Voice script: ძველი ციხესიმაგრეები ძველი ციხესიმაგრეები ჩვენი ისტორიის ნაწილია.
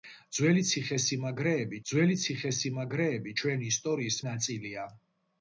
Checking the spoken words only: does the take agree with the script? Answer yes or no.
yes